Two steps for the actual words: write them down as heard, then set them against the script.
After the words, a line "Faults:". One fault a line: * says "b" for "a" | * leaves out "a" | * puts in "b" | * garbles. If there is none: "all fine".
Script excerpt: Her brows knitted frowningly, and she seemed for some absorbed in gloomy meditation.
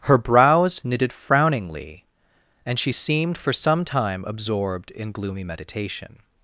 Her brows knitted frowningly, and she seemed for some time absorbed in gloomy meditation.
Faults:
* puts in "time"